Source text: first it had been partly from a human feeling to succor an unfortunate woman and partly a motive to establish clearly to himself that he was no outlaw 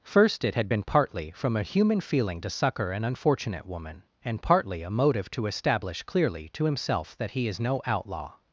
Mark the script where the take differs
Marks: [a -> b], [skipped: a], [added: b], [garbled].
first it had been partly from a human feeling to succor an unfortunate woman and partly a motive to establish clearly to himself that he [was -> is] no outlaw